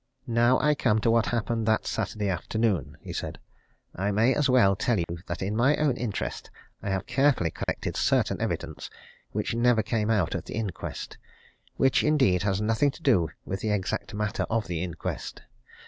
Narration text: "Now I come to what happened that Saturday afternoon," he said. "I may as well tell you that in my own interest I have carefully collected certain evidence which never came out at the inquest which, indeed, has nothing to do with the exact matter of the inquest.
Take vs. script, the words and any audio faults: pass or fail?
fail